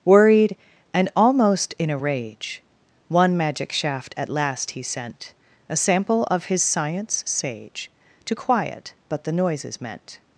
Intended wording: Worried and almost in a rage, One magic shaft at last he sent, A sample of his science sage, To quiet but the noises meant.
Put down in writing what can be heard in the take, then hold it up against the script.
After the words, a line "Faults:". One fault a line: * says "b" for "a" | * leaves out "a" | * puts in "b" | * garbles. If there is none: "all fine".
Worried and almost in a rage, One magic shaft at last he sent, A sample of his science sage, To quiet but the noises meant.
Faults:
all fine